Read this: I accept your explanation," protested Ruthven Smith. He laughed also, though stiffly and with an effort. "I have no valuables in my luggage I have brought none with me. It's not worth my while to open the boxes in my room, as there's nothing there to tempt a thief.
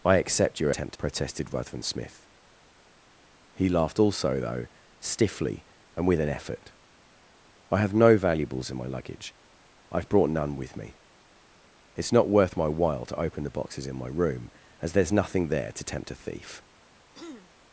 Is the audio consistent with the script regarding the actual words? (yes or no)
no